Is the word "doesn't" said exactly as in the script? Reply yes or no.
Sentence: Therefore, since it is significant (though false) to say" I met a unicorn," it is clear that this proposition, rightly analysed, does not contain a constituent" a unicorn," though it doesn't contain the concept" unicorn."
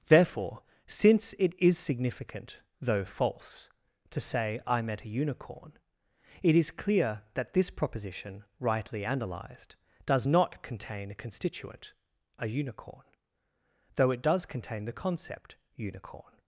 no